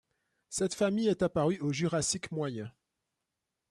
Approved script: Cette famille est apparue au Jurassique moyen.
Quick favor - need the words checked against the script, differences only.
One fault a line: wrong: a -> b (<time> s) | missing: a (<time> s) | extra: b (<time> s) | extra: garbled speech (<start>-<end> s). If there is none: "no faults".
no faults